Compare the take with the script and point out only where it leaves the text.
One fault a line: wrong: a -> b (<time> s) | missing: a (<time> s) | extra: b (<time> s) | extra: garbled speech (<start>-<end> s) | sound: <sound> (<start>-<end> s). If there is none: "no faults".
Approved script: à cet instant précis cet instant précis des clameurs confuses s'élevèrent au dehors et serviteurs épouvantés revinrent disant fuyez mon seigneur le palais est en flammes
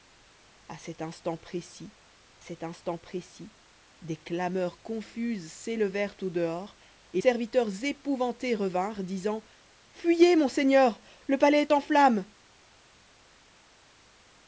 no faults